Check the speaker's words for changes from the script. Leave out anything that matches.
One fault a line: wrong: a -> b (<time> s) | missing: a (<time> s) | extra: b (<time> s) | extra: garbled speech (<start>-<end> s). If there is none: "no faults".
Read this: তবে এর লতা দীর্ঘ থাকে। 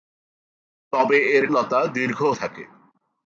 no faults